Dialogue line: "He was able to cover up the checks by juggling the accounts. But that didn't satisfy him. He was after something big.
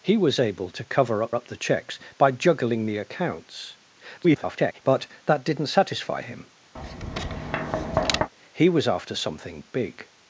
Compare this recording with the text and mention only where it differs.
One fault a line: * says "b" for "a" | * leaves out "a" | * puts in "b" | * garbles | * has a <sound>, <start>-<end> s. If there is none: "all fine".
* puts in "up"
* garbles
* has a tap, 6.8-8.3 s